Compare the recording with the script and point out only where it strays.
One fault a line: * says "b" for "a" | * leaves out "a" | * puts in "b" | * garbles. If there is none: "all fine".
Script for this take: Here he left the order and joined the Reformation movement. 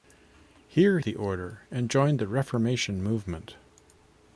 * leaves out "he left"